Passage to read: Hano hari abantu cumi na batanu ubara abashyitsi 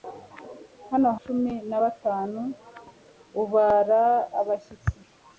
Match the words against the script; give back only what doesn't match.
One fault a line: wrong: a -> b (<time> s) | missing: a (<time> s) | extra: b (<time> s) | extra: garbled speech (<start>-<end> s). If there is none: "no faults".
missing: hari abantu (1.1 s)